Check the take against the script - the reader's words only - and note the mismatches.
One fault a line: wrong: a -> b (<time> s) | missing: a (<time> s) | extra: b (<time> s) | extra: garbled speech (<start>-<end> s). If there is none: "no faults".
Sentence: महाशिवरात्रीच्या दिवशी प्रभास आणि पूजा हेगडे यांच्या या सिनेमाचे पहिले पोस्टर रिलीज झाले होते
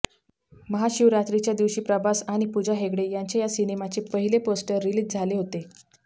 no faults